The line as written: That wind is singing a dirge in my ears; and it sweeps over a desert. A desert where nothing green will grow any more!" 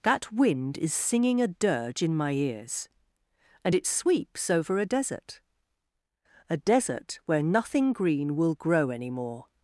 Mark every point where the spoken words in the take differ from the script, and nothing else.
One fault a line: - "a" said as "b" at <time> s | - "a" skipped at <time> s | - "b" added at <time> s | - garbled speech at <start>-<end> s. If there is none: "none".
none